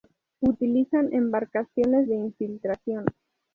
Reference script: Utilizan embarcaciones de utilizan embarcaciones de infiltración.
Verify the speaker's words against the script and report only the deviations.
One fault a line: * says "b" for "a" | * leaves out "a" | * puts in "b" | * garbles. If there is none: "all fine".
* leaves out "utilizan embarcaciones de"